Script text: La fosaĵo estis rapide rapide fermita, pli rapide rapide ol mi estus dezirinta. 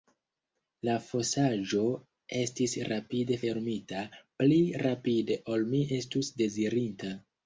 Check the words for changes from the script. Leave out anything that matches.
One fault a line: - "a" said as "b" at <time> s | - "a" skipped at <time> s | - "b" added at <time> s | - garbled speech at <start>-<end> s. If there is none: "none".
- "rapide" skipped at 3.4 s
- "rapide" skipped at 5.4 s